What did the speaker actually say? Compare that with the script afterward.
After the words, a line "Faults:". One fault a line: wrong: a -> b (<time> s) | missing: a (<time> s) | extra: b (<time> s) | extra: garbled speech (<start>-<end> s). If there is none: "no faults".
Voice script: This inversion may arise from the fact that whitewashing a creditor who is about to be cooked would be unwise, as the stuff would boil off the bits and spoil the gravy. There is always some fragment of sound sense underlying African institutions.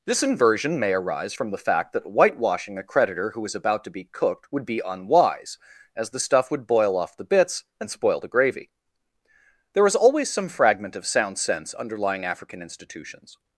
This inversion may arise from the fact that whitewashing a creditor who is about to be cooked would be unwise, as the stuff would boil off the bits and spoil the gravy. There is always some fragment of sound sense underlying African institutions.
Faults:
no faults